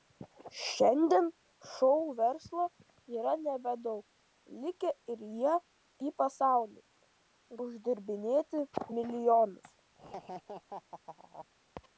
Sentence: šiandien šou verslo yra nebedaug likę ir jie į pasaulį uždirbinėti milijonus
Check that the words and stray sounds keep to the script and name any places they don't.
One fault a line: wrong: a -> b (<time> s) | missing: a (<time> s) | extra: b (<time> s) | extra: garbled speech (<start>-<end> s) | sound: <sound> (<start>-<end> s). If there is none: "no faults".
sound: laugh (9.9-11.5 s)